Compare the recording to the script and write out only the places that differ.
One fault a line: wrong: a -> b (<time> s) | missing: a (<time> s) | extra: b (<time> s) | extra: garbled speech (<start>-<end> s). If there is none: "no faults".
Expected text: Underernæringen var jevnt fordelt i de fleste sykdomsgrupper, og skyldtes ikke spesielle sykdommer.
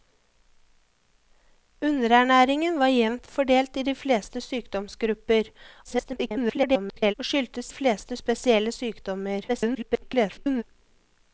extra: garbled speech (5.8-7.1 s)
wrong: ikke -> fleste (7.7 s)
extra: garbled speech (9.5-10.6 s)